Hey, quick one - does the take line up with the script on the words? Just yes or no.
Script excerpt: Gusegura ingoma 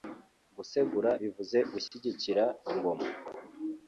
no